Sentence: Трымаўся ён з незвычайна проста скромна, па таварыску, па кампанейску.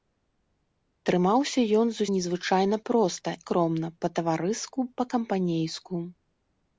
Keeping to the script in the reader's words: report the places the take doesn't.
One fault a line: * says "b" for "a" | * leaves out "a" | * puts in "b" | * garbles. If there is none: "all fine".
all fine